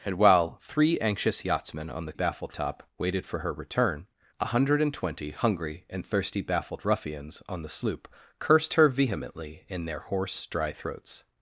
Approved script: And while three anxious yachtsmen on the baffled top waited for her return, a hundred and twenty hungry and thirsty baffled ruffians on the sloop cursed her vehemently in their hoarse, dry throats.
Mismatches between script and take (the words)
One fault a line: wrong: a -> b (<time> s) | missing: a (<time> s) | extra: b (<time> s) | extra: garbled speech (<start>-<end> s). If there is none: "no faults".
no faults